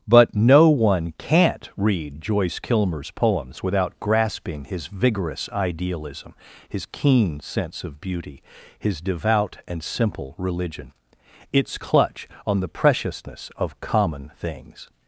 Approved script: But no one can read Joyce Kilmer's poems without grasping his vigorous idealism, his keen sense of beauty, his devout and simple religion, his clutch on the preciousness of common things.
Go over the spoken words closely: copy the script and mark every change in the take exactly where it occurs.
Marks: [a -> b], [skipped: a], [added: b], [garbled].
But no one [can -> can't] read Joyce Kilmer's poems without grasping his vigorous idealism, his keen sense of beauty, his devout and simple religion, [his -> its] clutch on the preciousness of common things.